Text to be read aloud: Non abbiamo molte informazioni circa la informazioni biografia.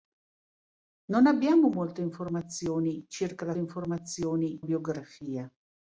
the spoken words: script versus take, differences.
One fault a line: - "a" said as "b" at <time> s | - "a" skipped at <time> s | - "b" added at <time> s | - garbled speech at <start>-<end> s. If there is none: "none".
none